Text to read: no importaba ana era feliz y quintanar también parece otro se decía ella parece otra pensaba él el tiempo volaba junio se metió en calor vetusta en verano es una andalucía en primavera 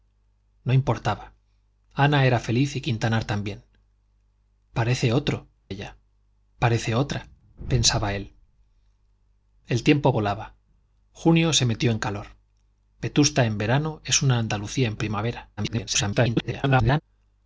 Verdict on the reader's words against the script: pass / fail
fail